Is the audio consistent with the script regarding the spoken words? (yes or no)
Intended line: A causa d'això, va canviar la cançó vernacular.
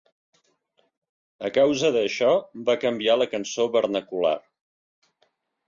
yes